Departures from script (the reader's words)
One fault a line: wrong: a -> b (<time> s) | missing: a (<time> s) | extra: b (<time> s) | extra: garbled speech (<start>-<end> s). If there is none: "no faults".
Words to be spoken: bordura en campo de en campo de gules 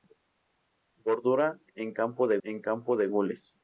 no faults